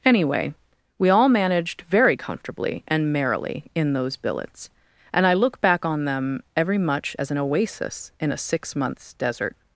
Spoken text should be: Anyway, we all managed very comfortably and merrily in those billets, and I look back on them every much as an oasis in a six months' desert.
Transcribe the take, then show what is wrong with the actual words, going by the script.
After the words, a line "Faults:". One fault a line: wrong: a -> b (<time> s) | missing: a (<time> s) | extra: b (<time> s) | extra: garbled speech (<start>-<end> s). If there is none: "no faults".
Anyway, we all managed very comfortably and merrily in those billets, and I look back on them every much as an oasis in a six months' desert.
Faults:
no faults